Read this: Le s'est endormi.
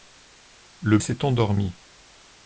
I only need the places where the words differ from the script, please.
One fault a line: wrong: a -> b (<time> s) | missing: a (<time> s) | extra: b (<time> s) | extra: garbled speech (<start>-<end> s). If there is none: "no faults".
no faults